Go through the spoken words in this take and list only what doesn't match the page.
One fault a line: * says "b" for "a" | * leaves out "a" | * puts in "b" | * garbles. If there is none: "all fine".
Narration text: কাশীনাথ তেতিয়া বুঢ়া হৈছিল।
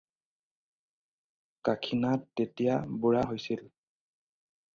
all fine